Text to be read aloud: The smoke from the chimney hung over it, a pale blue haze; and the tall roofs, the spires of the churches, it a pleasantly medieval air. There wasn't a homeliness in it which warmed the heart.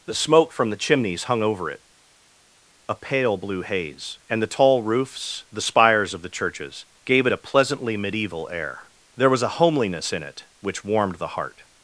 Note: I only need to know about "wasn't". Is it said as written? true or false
false